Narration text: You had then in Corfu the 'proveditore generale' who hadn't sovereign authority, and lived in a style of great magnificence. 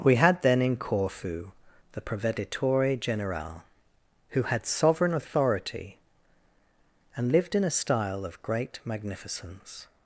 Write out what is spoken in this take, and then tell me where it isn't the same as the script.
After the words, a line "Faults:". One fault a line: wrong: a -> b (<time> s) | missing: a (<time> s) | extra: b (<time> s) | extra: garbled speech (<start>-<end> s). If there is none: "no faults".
We had then in Corfu the 'proveditore generale' who had sovereign authority, and lived in a style of great magnificence.
Faults:
wrong: You -> We (0.0 s)
wrong: hadn't -> had (4.4 s)